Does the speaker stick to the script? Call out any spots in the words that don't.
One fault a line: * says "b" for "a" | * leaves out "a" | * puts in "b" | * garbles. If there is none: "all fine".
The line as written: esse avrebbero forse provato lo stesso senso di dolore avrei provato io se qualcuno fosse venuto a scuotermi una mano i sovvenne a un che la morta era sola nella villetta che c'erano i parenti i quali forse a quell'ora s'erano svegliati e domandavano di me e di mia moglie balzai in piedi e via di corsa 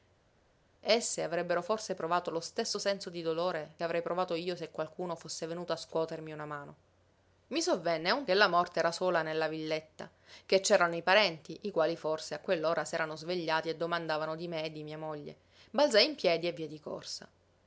all fine